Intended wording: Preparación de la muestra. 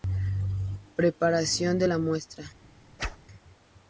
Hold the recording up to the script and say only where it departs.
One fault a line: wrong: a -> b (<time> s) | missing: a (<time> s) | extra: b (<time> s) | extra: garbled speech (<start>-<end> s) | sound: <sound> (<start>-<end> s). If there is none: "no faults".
sound: whoosh (3.0-3.2 s)